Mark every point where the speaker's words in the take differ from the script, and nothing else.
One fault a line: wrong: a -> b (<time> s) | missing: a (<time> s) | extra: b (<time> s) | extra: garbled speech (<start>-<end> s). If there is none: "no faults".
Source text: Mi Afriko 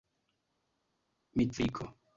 no faults